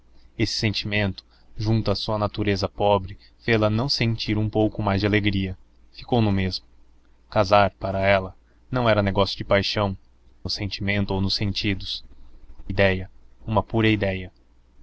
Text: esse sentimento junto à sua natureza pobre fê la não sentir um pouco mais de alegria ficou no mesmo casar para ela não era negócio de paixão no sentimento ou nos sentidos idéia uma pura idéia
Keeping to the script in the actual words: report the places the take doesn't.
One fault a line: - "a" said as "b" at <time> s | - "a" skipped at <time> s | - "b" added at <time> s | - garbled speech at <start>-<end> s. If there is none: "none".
none